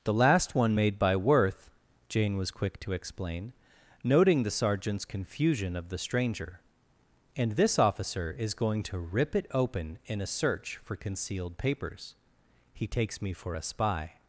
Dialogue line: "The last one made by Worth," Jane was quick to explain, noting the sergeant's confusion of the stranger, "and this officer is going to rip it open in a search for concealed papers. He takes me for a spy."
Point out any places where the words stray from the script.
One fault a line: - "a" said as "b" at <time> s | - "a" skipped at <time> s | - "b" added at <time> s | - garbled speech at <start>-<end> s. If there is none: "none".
none